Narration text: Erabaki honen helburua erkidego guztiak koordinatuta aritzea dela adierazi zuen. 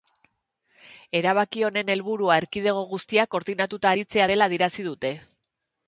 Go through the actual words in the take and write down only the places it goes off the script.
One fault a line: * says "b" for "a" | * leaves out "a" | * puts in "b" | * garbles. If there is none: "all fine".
* says "dute" for "zuen"